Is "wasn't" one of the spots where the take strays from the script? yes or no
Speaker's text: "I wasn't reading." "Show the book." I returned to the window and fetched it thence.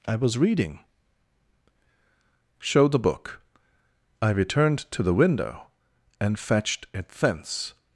yes